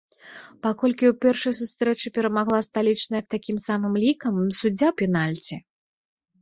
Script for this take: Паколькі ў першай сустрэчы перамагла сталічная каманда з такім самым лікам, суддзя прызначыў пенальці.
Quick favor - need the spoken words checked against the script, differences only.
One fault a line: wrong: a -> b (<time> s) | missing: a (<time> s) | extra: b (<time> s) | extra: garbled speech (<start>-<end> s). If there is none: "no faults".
missing: каманда (3.2 s)
missing: прызначыў (4.9 s)